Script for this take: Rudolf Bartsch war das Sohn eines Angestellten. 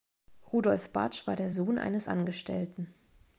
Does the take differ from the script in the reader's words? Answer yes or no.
yes